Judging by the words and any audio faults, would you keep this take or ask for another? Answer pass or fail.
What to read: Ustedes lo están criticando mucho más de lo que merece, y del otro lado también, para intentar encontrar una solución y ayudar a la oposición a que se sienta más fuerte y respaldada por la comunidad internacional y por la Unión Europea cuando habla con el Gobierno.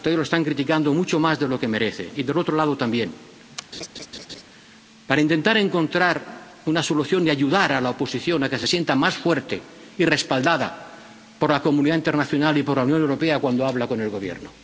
fail